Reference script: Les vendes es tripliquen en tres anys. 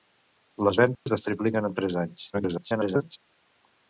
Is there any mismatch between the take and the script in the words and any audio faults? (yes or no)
yes